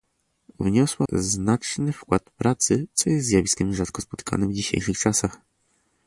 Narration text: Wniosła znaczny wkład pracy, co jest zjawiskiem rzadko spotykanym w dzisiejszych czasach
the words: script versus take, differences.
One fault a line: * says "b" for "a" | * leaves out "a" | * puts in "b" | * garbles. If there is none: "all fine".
all fine